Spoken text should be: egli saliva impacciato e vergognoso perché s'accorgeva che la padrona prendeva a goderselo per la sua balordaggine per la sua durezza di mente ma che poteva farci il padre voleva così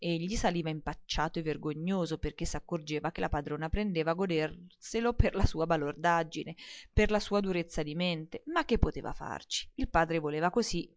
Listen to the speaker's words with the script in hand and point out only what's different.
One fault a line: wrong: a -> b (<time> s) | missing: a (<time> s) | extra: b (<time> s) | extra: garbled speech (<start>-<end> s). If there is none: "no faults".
no faults